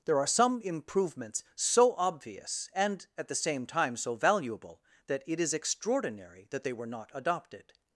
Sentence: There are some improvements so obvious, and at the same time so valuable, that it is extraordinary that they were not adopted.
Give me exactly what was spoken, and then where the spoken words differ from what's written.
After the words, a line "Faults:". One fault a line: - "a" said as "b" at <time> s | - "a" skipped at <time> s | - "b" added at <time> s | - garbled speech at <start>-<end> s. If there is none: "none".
There are some improvements so obvious, and at the same time so valuable, that it is extraordinary that they were not adopted.
Faults:
none